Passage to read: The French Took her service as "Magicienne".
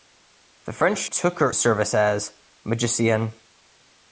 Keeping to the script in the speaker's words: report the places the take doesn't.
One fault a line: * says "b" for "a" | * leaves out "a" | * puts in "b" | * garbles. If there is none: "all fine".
all fine